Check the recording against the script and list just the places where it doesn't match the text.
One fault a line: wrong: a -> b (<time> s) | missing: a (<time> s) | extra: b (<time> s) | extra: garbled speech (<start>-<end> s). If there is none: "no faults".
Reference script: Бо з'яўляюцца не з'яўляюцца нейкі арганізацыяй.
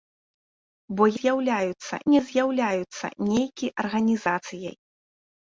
no faults